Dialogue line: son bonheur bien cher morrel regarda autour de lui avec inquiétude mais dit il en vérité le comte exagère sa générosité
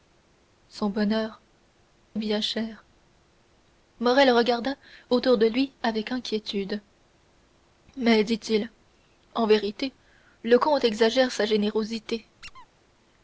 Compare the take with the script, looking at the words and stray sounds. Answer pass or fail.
fail